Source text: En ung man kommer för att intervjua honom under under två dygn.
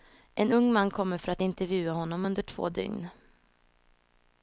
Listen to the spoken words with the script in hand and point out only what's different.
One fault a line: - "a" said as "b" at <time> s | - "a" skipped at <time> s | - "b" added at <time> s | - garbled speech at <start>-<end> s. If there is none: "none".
- "under" skipped at 2.4 s